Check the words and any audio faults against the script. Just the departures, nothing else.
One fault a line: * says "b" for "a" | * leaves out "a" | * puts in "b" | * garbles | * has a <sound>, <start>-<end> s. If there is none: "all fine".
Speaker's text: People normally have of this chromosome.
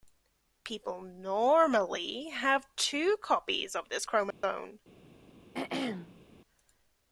* puts in "two copies"
* has a dropout, 4.3-4.4 s
* has a throat clearing, 5.5-6.3 s